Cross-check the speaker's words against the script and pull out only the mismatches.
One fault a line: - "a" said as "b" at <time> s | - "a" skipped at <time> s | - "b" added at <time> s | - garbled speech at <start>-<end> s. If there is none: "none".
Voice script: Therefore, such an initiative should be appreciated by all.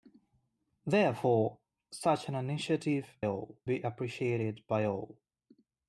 - "should" said as "all" at 3.3 s